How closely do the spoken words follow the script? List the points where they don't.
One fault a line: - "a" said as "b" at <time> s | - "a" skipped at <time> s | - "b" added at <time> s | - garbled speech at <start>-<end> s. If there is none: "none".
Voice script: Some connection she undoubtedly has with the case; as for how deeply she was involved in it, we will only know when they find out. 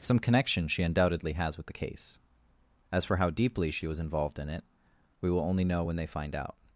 none